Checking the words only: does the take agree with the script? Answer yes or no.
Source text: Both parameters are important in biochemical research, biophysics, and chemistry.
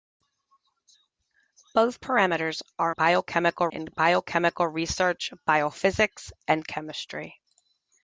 no